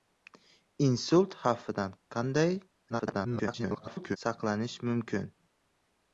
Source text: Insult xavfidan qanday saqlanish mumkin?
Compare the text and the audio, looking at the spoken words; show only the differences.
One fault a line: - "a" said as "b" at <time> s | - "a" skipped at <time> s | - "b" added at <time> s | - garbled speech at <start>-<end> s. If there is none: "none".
- garbled speech at 2.9-4.2 s